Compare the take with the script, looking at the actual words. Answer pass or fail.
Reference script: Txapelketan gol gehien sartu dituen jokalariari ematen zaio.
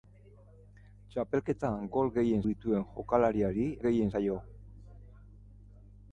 fail